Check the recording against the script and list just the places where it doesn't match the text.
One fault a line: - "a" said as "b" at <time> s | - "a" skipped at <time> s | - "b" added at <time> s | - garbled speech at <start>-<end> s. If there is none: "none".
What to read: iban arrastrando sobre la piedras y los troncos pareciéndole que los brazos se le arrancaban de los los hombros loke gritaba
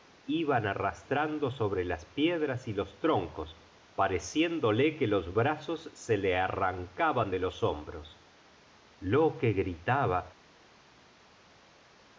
- "la" said as "las" at 1.9 s
- "los" skipped at 7.6 s